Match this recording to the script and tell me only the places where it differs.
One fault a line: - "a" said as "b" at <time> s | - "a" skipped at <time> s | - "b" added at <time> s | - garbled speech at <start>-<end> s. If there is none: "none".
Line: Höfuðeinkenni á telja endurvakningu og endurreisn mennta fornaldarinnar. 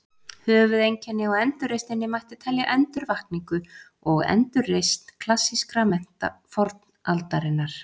- "endurreisninni mætti" added at 1.4 s
- "klassískra" added at 5.3 s